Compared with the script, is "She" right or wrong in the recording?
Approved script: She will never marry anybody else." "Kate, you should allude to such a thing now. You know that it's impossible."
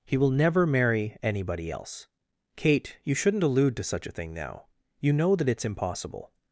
wrong